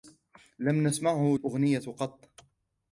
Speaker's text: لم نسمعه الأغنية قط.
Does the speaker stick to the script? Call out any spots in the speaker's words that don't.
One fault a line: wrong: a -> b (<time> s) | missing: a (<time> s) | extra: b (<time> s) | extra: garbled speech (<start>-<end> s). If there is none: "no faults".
no faults